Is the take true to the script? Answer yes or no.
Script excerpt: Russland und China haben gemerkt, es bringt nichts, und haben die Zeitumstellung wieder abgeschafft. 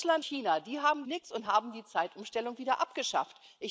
no